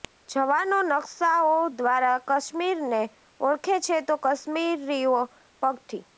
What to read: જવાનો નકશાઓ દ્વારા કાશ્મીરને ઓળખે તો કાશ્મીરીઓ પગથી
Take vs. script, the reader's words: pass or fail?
fail